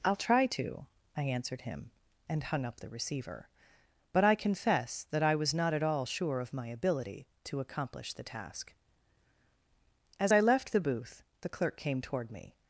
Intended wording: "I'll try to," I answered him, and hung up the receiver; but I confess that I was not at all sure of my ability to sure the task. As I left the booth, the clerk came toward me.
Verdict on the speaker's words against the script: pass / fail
fail